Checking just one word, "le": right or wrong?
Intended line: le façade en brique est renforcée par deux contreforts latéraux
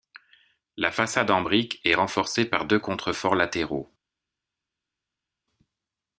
wrong